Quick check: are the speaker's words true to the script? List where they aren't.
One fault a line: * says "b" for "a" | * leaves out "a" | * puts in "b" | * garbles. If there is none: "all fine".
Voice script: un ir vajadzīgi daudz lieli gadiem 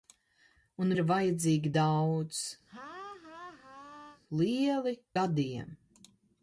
all fine